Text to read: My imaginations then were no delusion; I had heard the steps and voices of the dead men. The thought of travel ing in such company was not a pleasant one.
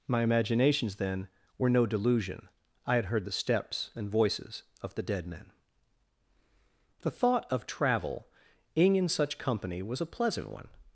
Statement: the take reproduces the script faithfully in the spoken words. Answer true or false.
false